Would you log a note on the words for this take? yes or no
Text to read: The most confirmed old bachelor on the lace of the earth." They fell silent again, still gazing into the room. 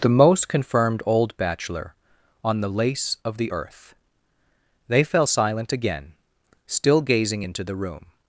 no